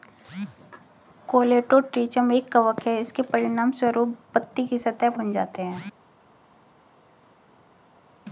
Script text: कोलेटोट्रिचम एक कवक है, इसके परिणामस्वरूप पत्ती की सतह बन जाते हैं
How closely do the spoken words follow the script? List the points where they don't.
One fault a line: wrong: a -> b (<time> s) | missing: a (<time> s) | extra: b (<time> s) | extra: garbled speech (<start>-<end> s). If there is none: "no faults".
no faults